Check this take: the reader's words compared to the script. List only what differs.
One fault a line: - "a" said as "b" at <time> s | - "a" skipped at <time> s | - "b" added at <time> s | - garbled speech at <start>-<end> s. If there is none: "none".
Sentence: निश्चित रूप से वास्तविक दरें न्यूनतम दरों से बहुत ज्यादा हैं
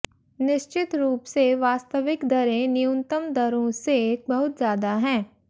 none